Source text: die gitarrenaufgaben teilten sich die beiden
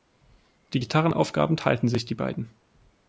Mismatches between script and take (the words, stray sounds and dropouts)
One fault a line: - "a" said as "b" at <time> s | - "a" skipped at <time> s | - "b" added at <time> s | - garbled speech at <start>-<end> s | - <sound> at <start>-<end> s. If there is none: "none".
none